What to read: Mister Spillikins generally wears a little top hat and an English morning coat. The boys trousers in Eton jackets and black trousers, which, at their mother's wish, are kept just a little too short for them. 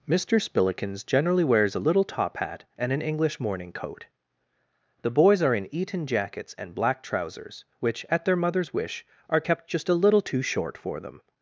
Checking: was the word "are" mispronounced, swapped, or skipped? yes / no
no